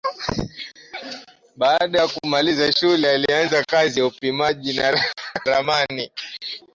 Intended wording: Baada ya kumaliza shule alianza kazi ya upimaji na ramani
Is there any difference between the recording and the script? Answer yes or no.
yes